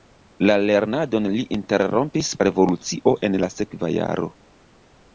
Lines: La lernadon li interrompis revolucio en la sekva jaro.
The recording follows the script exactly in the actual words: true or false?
true